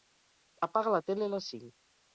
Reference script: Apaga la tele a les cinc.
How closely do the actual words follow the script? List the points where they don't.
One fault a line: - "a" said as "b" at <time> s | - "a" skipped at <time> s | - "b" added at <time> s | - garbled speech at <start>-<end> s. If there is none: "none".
none